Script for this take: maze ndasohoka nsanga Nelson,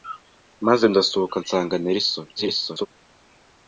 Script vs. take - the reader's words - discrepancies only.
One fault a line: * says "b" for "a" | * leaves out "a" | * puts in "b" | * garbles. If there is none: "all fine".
* garbles